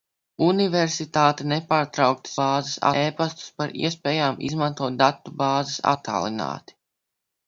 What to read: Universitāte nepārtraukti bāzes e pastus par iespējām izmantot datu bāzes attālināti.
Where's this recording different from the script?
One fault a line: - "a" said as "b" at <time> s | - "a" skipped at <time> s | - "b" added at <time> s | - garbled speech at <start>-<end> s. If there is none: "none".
none